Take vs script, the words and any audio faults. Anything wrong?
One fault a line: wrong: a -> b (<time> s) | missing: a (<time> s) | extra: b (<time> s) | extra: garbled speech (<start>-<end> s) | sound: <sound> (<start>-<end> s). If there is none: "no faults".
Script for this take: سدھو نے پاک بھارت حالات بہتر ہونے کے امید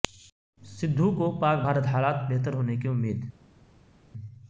wrong: نے -> کو (1.2 s)
wrong: کے -> کی (2.8 s)